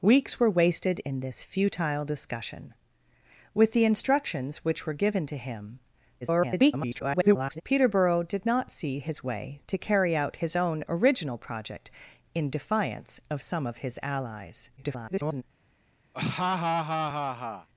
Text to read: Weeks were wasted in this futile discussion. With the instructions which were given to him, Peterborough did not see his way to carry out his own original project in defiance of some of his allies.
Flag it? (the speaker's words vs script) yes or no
yes